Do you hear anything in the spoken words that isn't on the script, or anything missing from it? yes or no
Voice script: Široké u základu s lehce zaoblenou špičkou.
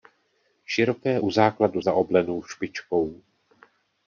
yes